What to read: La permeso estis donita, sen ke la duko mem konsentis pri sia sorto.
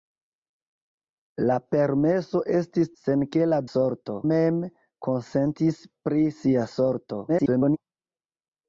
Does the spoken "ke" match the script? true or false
true